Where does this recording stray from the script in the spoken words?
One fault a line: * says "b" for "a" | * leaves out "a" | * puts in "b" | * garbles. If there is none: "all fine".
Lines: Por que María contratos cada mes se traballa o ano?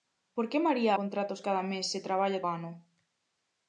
all fine